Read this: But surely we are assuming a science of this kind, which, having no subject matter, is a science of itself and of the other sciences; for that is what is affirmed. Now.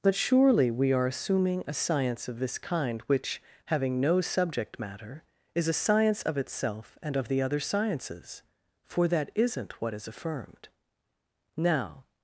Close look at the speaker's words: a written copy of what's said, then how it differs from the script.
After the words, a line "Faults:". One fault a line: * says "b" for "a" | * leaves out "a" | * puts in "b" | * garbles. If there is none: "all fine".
But surely we are assuming a science of this kind, which, having no subject matter, is a science of itself and of the other sciences; for that isn't what is affirmed. Now.
Faults:
* says "isn't" for "is"